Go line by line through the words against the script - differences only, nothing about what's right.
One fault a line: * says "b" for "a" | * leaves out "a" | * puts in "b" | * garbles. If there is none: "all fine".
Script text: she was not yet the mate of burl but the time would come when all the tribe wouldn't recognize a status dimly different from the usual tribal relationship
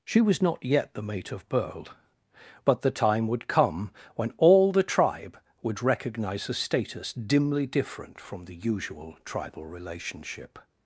* says "would" for "wouldn't"